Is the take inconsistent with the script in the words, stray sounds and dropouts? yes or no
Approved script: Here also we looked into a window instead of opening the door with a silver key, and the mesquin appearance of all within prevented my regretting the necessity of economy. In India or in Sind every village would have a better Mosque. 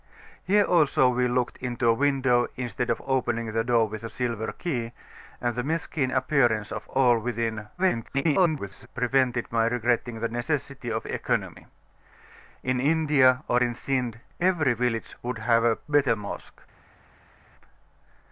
yes